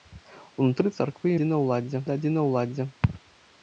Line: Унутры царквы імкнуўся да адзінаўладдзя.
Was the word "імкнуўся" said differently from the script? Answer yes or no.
yes